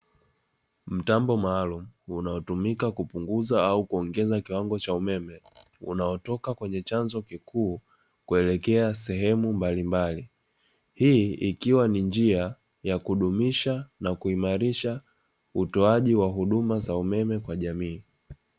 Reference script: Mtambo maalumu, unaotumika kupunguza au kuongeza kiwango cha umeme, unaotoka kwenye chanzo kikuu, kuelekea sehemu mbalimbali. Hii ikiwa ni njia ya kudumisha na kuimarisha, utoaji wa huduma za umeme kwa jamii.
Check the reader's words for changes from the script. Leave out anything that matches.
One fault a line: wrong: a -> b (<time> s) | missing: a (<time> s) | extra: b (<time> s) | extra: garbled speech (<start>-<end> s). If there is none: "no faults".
no faults